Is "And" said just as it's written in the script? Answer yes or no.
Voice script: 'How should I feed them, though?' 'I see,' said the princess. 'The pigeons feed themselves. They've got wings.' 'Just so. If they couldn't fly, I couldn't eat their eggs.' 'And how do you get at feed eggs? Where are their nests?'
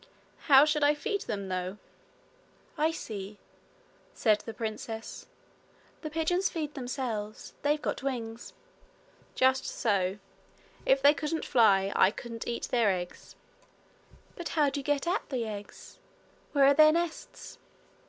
no